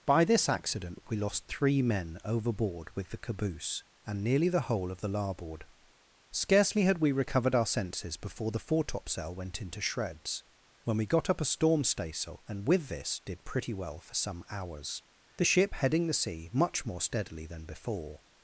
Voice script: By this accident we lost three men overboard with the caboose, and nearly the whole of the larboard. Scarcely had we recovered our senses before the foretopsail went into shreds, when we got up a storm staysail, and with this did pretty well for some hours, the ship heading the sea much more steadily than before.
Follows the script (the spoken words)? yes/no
yes